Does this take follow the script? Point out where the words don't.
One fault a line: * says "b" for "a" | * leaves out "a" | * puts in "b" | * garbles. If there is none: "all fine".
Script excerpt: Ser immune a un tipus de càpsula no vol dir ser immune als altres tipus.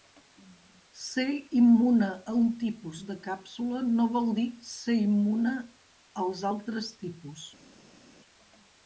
all fine